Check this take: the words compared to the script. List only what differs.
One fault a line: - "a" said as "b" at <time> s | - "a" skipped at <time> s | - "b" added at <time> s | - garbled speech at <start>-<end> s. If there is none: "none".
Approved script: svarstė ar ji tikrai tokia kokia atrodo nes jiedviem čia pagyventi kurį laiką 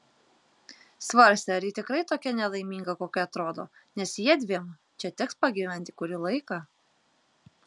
- "nelaiminga" added at 2.4 s
- "teks" added at 5.2 s